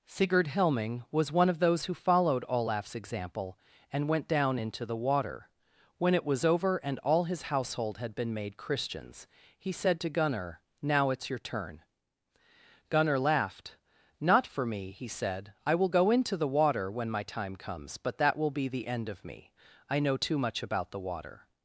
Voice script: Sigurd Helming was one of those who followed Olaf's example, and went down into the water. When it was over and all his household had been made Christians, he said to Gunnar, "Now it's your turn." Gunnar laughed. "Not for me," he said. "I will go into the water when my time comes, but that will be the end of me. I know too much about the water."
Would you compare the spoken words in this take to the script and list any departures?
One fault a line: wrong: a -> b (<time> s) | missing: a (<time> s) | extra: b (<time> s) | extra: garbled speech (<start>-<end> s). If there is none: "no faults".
no faults